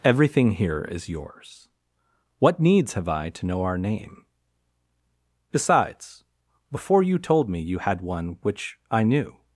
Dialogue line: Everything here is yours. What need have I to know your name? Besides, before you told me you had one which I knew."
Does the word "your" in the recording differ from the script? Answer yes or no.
yes